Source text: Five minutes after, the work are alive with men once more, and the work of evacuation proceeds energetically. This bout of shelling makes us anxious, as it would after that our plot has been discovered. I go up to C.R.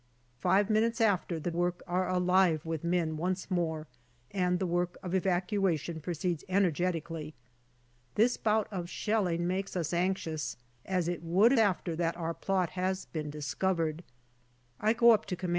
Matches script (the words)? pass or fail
pass